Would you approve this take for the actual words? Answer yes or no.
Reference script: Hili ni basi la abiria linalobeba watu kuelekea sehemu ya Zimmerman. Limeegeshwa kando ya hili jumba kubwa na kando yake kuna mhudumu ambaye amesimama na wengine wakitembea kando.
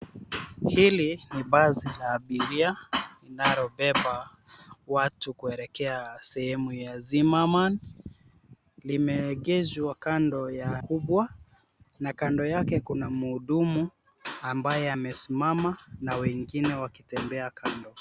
no